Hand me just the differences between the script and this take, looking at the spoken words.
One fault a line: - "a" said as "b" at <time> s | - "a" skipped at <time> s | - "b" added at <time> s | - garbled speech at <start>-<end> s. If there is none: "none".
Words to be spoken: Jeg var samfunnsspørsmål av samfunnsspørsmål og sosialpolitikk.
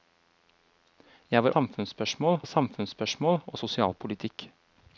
none